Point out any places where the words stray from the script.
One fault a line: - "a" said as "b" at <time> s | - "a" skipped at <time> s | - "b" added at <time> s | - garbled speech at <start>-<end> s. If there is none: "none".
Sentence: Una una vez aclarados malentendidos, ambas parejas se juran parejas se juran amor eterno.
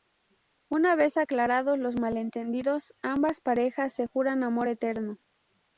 - "una" skipped at 0.9 s
- "los" added at 1.8 s
- "parejas se juran" skipped at 4.4 s